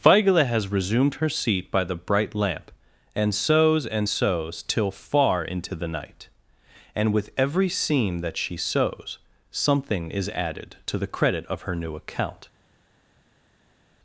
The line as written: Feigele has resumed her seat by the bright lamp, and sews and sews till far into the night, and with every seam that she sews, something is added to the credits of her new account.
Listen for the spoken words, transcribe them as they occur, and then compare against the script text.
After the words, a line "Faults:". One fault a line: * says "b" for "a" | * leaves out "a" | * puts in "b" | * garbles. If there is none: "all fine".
Feigele has resumed her seat by the bright lamp, and sews and sews till far into the night, and with every seam that she sews, something is added to the credit of her new account.
Faults:
* says "credit" for "credits"